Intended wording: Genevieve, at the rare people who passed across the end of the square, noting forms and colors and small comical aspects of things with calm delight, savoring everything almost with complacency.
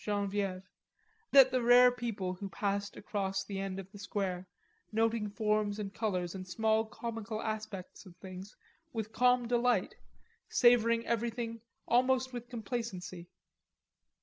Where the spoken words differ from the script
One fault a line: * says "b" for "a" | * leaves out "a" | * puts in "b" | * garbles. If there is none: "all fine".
all fine